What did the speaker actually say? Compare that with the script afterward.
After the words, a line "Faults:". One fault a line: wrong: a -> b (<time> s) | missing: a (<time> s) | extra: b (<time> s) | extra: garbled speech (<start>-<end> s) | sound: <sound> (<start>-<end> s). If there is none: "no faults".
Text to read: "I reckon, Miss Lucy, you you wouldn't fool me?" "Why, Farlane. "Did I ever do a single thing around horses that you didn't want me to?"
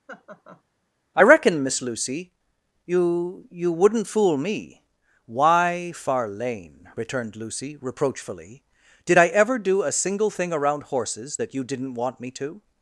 "I reckon, Miss Lucy, you you wouldn't fool me?" "Why, Farlane!" returned Lucy, reproachfully. "Did I ever do a single thing around horses that you didn't want me to?"
Faults:
sound: laugh (0.1-0.6 s)
extra: returned Lucy reproachfully (6.9 s)